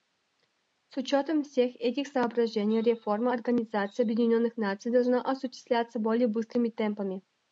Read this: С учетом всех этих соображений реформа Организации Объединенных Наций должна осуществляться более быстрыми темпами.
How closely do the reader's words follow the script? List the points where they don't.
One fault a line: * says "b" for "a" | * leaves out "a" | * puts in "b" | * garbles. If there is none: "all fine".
all fine